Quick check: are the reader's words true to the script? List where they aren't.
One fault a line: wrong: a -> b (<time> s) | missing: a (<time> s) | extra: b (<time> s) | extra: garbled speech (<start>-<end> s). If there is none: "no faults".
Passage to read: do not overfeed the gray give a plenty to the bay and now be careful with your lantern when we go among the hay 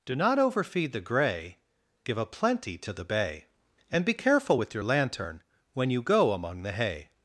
missing: now (4.0 s)
wrong: we -> you (5.9 s)